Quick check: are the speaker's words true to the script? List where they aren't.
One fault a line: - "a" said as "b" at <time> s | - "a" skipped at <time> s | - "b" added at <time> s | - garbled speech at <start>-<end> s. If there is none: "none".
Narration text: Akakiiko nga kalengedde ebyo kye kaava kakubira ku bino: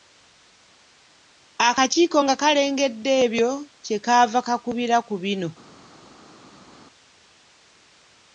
none